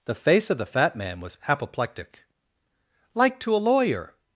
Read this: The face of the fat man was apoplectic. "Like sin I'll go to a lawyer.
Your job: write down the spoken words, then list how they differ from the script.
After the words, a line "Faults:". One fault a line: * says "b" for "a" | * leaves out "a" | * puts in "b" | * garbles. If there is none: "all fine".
The face of the fat man was apoplectic. "Like to a lawyer.
Faults:
* leaves out "sin I'll go"